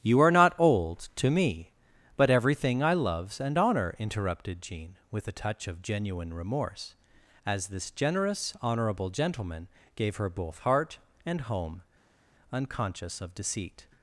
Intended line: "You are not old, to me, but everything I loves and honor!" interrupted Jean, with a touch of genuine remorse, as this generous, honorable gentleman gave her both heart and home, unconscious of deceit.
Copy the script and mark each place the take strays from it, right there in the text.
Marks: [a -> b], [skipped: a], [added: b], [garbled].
"You are not old, to me, but everything I loves and honor!" interrupted Jean, with a touch of genuine remorse, as this generous, honorable gentleman gave her both heart and home, unconscious of deceit.